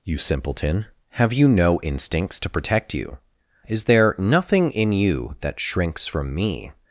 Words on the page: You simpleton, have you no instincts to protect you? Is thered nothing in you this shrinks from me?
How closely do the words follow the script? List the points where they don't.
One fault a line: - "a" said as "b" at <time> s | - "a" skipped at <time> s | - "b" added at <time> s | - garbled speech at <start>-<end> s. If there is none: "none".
- "thered" said as "there" at 3.8 s
- "this" said as "that" at 5.4 s